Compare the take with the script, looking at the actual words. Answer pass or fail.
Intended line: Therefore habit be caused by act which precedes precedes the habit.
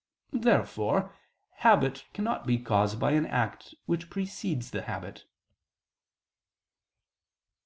fail